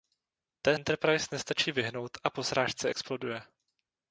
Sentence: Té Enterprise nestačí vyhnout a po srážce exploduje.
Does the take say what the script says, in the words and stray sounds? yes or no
yes